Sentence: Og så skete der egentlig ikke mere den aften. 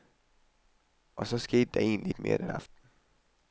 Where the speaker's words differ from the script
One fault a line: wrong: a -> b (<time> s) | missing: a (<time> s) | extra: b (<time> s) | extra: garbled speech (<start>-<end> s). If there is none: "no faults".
no faults